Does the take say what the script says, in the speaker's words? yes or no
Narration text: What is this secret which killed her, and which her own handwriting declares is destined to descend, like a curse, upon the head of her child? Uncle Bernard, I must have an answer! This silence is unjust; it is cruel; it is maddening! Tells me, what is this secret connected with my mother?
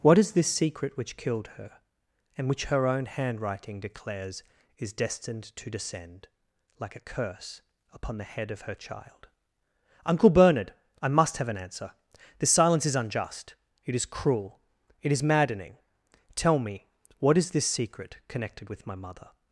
no